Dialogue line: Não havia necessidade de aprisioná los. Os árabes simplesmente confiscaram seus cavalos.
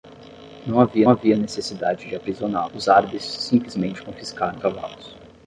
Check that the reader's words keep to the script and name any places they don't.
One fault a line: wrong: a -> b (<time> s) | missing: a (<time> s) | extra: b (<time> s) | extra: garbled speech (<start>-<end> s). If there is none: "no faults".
extra: havia (1.1 s)
missing: los (2.7 s)
missing: seus (4.6 s)